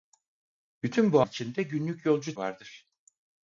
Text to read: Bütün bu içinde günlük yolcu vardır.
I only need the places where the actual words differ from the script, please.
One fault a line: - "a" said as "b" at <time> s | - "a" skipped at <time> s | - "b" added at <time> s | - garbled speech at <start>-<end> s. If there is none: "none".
none